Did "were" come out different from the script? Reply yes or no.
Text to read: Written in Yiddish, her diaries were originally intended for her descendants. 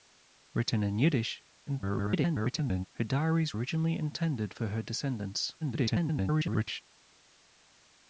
yes